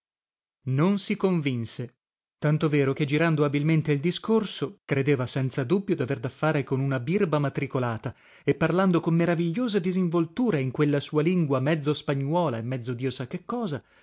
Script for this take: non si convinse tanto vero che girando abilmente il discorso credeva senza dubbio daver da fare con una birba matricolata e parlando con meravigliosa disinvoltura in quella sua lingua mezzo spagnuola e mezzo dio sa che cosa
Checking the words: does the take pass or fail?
pass